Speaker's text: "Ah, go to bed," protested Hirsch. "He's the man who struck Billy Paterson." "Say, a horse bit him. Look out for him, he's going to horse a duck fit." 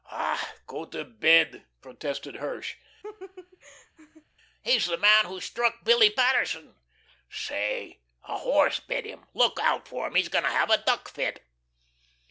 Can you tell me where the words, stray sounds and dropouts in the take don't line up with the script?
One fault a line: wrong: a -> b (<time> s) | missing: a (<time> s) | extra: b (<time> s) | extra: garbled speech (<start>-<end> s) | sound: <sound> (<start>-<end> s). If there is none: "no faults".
sound: laugh (3.0-4.2 s)
wrong: horse -> have (10.5 s)